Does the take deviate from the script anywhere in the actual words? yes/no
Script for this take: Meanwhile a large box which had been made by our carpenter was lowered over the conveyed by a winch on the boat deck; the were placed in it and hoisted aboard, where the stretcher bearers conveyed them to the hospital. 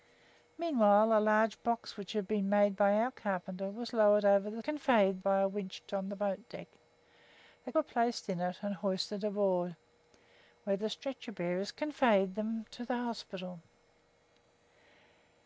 no